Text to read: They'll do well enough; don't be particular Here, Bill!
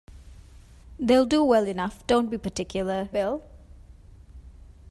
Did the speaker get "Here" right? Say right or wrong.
wrong